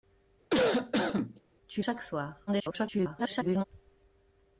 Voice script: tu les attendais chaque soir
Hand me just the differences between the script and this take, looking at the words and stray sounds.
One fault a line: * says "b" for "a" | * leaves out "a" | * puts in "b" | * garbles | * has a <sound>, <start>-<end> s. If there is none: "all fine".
* has a cough, 0.5-1.4 s
* leaves out "les attendais"
* garbles